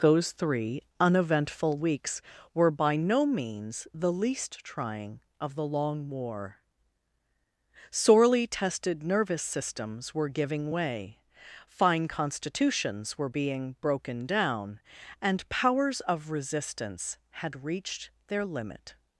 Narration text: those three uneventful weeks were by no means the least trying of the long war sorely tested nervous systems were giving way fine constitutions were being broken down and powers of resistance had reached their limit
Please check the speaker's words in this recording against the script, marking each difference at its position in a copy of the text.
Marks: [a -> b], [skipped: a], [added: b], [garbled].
those three uneventful weeks were by no means the least trying of the long war sorely tested nervous systems were giving way fine constitutions were being broken down and powers of resistance had reached their limit